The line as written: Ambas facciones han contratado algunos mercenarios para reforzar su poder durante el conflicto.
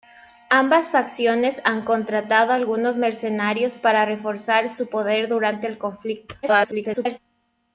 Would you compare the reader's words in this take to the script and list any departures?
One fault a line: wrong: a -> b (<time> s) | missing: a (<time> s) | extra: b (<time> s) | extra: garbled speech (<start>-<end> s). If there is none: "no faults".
extra: garbled speech (6.4-7.2 s)